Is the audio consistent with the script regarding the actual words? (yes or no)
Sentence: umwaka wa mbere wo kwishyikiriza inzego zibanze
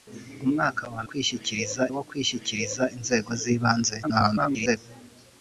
no